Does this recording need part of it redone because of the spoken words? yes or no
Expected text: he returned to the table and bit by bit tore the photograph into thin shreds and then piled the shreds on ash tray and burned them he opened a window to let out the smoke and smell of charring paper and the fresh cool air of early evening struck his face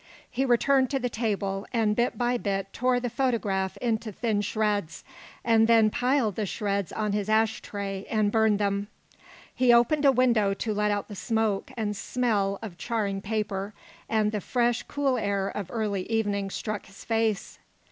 yes